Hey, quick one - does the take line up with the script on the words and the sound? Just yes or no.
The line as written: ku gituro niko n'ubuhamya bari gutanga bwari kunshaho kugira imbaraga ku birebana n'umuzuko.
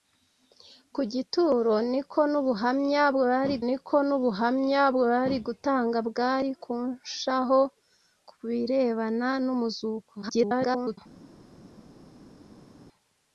no